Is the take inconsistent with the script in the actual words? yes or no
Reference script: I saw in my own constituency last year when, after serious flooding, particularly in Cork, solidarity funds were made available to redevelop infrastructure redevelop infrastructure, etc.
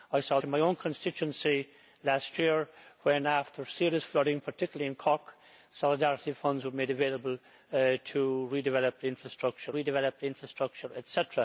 no